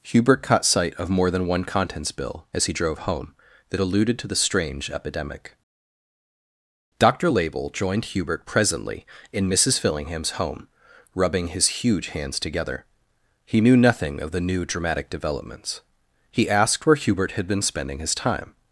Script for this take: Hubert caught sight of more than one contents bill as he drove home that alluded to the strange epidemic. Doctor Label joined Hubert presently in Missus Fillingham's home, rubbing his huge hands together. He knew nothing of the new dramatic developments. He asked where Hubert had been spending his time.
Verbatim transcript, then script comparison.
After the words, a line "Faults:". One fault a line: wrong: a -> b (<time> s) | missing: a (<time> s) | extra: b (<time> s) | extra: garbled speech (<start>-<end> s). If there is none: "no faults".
Hubert caught sight of more than one contents bill as he drove home that alluded to the strange epidemic. Doctor Label joined Hubert presently in Missus Fillingham's home, rubbing his huge hands together. He knew nothing of the new dramatic developments. He asked where Hubert had been spending his time.
Faults:
no faults